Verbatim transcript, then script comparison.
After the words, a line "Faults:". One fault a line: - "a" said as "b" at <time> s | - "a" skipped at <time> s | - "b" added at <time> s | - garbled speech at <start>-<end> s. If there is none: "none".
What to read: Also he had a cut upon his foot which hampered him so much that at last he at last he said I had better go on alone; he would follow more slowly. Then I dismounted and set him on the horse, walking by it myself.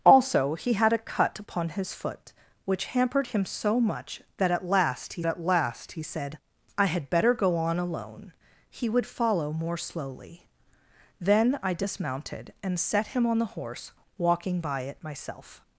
Also he had a cut upon his foot which hampered him so much that at last he at last he said I had better go on alone; he would follow more slowly. Then I dismounted and set him on the horse, walking by it myself.
Faults:
none